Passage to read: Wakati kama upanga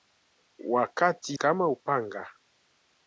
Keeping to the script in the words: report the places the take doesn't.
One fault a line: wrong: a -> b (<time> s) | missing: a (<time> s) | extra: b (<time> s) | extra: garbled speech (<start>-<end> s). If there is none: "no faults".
no faults